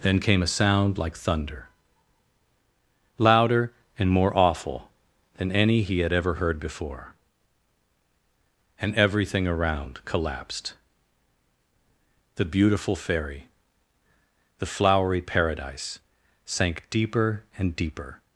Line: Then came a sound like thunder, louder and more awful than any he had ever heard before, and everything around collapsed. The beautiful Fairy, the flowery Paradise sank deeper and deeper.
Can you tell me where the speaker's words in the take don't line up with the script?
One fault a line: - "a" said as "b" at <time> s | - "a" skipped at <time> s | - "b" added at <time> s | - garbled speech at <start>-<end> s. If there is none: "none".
none